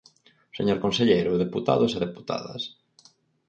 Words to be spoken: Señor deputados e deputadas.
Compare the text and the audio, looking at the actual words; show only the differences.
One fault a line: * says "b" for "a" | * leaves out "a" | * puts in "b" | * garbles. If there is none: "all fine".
* puts in "conselleiro"